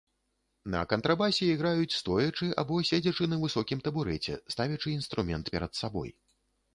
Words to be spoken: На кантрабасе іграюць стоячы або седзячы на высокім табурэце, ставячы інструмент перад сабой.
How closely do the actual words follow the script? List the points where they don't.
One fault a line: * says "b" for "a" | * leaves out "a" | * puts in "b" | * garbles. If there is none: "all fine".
all fine